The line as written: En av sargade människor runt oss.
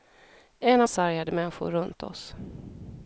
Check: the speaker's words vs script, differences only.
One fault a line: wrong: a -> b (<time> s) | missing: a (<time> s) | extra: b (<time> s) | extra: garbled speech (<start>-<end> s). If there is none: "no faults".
no faults